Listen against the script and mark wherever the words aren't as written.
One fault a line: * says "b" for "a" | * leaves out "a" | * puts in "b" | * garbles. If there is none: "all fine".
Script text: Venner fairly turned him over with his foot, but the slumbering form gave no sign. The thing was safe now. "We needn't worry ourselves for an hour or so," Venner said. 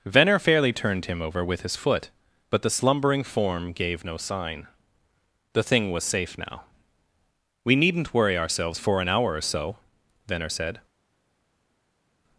all fine